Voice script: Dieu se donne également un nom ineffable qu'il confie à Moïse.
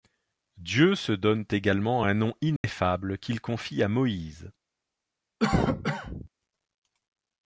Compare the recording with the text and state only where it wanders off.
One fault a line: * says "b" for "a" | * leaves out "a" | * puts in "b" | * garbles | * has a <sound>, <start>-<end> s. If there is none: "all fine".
* has a dropout, 2.6-2.6 s
* has a cough, 5.4-6.3 s